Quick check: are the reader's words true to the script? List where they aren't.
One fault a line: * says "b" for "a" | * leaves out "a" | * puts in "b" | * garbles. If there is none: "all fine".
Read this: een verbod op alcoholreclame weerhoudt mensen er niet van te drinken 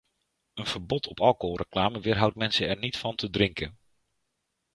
all fine